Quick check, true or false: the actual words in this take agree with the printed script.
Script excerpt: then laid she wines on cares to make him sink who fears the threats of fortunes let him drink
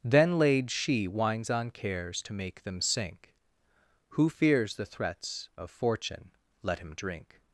false